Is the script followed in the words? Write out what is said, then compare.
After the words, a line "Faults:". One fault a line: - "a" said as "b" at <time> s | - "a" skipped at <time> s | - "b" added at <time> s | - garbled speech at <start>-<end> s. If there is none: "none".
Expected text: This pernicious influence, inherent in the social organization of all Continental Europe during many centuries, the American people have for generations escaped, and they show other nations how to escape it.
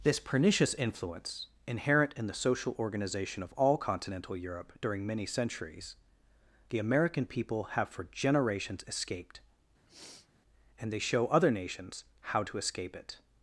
This pernicious influence, inherent in the social organization of all Continental Europe during many centuries, the American people have for generations escaped, and they show other nations how to escape it.
Faults:
none